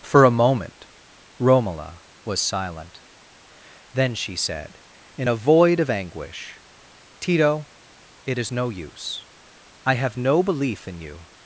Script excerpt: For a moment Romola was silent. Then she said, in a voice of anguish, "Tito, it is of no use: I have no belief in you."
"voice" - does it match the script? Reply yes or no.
no